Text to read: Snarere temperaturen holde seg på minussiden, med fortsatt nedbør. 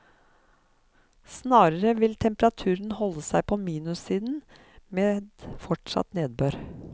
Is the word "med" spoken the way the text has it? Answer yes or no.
yes